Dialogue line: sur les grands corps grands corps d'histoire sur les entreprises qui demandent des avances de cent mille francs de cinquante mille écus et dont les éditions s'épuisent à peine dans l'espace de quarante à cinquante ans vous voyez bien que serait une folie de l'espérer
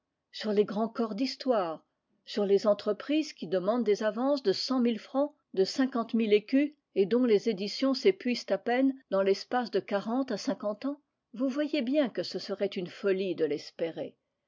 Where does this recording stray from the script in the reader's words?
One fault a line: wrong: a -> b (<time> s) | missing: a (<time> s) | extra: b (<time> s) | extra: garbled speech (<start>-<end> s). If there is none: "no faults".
missing: grands corps (1.1 s)
extra: ce (12.2 s)